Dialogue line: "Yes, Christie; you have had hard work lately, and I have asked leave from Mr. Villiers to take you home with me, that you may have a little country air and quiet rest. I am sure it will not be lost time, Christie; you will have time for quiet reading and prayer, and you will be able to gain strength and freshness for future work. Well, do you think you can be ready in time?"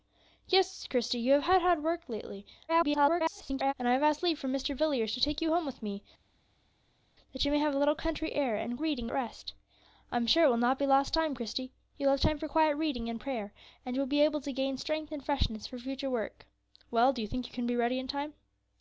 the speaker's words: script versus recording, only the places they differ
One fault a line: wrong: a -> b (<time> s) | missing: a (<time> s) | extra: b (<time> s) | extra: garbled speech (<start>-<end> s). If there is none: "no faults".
extra: garbled speech (2.7-3.7 s)
wrong: quiet -> reading (8.8 s)